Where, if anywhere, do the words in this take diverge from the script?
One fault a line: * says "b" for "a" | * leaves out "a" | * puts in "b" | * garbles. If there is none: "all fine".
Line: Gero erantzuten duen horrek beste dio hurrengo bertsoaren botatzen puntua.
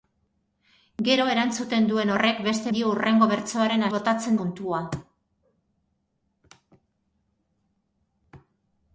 all fine